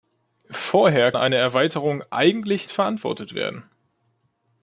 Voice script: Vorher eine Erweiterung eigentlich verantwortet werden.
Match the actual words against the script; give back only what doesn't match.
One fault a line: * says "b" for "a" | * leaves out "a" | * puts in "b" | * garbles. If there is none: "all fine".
all fine